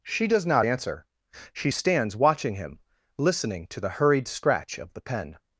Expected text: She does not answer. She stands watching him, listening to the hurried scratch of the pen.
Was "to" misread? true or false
false